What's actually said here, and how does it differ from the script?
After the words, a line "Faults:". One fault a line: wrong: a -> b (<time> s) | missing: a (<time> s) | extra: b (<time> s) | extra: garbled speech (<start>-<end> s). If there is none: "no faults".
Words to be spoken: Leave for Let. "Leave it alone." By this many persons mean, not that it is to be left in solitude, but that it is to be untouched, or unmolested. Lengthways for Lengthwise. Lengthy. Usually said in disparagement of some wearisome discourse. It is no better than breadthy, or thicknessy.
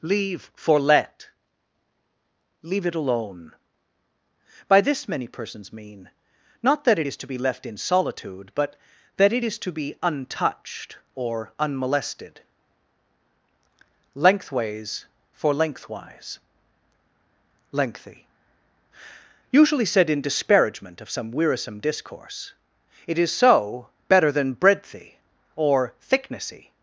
Leave for Let. "Leave it alone." By this many persons mean, not that it is to be left in solitude, but that it is to be untouched, or unmolested. Lengthways for Lengthwise. Lengthy. Usually said in disparagement of some wearisome discourse. It is so better than breadthy, or thicknessy.
Faults:
wrong: no -> so (23.3 s)